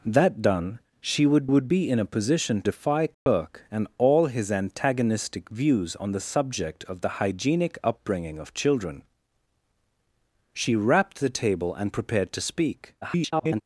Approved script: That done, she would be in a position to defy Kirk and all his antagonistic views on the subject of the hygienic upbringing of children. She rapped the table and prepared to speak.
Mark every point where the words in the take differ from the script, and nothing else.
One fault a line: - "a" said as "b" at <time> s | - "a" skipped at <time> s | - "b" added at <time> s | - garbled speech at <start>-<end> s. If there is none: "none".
- "would" added at 1.4 s
- "to" skipped at 2.6 s
- garbled speech at 13.0-13.6 s